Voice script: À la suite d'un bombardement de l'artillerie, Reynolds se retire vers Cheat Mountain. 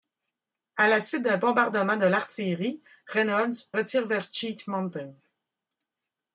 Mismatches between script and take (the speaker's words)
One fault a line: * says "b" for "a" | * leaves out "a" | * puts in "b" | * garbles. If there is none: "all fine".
* leaves out "se"